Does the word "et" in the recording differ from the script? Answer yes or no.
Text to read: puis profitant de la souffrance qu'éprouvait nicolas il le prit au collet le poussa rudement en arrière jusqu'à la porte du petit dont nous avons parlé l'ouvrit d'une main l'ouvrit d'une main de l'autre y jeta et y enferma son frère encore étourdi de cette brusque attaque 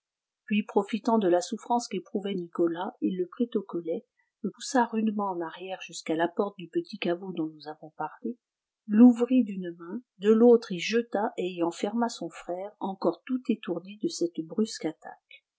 no